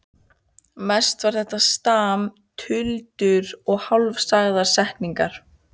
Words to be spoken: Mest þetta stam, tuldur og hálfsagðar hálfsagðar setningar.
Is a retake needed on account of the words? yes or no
yes